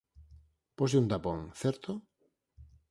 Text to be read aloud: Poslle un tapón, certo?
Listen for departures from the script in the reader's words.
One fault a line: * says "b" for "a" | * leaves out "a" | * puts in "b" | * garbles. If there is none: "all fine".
all fine